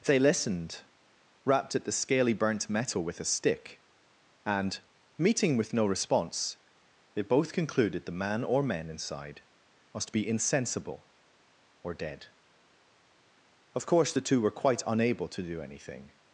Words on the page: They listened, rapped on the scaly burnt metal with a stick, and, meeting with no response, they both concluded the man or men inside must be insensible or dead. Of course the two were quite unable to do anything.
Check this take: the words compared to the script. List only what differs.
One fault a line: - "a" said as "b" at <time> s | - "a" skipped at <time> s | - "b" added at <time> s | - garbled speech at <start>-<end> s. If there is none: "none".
- "on" said as "at" at 1.8 s